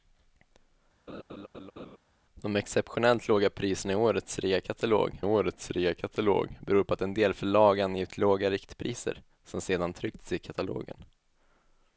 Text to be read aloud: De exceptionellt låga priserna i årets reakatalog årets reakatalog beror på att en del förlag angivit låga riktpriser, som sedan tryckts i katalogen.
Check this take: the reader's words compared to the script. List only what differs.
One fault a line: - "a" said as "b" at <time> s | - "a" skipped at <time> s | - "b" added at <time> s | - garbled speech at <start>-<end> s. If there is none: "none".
none